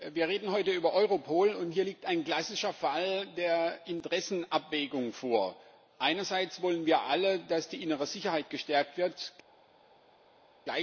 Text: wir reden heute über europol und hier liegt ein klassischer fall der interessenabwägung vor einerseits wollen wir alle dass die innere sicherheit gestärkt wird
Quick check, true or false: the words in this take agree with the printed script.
true